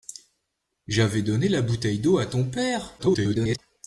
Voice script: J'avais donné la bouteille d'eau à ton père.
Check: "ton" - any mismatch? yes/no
no